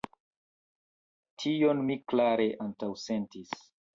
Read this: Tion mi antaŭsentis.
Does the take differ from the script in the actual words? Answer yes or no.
yes